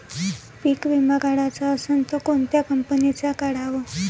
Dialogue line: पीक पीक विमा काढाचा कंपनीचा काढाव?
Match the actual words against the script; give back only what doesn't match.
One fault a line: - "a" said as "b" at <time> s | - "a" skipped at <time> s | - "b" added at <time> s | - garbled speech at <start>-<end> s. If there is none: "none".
- "पीक" skipped at 0.9 s
- "असन त कोनत्या" added at 1.7 s